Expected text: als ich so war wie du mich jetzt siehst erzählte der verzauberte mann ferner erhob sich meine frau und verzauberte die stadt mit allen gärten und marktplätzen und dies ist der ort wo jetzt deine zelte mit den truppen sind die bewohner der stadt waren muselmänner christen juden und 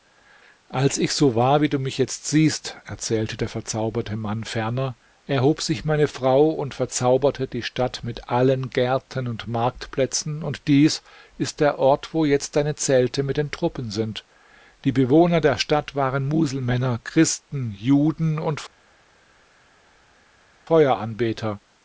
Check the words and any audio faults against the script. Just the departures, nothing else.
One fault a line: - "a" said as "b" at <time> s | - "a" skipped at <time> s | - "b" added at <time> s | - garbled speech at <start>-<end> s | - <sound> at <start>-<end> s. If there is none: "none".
none